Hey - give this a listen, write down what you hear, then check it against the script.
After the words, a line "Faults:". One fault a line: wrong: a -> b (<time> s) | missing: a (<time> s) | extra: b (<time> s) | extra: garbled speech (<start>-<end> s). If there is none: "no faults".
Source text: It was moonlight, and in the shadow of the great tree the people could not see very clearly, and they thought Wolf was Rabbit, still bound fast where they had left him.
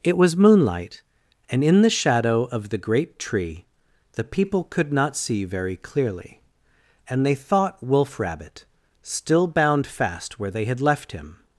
It was moonlight, and in the shadow of the great tree the people could not see very clearly, and they thought Wolf Rabbit, still bound fast where they had left him.
Faults:
missing: was (8.2 s)